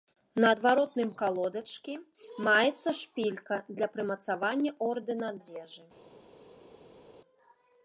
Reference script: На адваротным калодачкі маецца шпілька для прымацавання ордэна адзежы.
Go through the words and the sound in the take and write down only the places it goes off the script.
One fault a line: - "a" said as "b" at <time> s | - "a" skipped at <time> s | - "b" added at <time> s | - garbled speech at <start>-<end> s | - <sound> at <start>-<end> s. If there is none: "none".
none